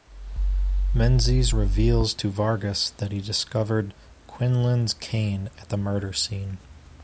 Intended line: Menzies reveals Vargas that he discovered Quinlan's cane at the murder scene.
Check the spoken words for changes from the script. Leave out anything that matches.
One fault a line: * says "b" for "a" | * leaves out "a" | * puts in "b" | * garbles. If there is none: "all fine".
* puts in "to"